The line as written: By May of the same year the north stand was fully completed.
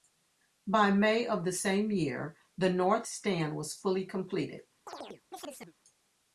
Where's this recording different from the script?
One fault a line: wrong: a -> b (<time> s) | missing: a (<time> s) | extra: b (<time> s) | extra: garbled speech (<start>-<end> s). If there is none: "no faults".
no faults